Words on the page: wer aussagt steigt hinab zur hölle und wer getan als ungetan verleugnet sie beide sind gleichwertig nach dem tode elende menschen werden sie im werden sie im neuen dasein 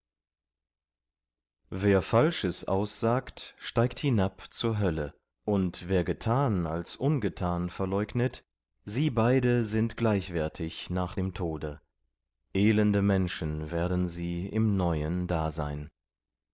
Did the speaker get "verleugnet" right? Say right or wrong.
right